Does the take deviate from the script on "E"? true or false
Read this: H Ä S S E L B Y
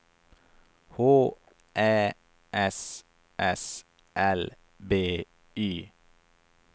true